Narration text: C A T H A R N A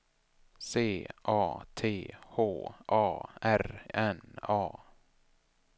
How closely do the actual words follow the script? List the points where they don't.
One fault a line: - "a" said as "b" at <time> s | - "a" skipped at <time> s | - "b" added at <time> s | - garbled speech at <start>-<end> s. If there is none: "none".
none